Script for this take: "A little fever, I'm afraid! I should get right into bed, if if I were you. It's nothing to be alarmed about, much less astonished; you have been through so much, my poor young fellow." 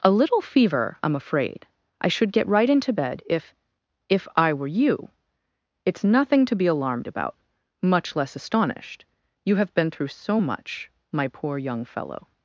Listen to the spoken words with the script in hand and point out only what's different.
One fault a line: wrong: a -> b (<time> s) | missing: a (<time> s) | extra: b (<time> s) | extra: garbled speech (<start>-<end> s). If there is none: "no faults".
no faults